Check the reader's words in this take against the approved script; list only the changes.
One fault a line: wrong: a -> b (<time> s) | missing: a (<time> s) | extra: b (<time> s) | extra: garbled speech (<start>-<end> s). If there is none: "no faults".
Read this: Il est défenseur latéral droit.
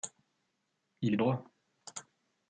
missing: défenseur latéral (1.2 s)